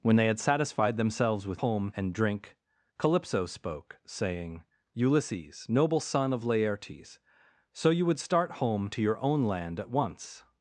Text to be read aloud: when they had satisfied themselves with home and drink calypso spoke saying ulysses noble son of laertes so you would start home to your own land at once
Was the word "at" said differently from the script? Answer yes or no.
no